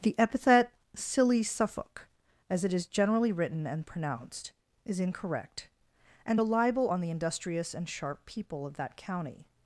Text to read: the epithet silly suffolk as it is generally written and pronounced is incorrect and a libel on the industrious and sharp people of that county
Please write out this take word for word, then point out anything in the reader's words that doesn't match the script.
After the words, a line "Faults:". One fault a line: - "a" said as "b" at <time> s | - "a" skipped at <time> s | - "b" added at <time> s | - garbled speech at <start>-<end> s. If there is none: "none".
the epithet silly suffolk as it is generally written and pronounced is incorrect and a libel on the industrious and sharp people of that county
Faults:
none